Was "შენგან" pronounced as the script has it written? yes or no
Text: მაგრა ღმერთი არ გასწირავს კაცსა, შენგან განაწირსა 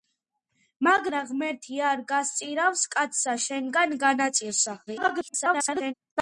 yes